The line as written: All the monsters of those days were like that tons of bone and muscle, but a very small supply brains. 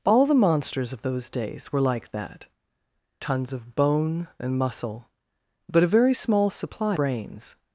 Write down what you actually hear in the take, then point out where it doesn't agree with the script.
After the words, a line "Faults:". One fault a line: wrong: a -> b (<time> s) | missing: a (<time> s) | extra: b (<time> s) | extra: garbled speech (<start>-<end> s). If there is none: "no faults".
All the monsters of those days were like that tons of bone and muscle, but a very small supply brains.
Faults:
no faults